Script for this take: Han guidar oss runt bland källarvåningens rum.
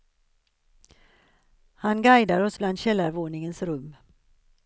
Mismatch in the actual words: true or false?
true